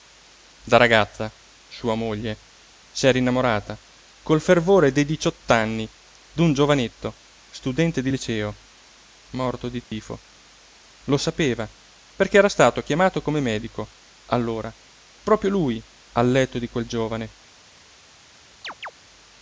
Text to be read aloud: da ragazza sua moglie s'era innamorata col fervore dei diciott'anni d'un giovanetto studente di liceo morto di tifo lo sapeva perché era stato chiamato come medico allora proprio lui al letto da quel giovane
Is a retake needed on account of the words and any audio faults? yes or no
yes